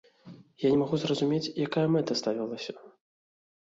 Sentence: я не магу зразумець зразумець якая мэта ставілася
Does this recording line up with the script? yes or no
no